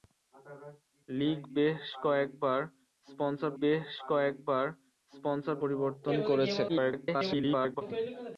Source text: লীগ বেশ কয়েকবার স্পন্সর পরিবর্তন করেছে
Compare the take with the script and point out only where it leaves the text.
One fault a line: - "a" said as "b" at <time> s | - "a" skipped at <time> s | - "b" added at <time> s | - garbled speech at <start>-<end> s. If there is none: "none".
- "বেশ কয়েকবার স্পন্সর" added at 3.6 s
- garbled speech at 6.7-7.8 s